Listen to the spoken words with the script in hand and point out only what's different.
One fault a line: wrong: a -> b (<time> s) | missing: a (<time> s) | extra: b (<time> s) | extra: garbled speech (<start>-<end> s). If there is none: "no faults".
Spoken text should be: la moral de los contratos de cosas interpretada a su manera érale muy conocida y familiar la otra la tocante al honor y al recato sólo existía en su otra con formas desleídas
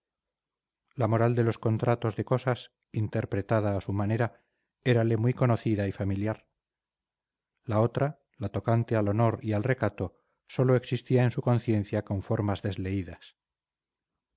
wrong: otra -> conciencia (11.4 s)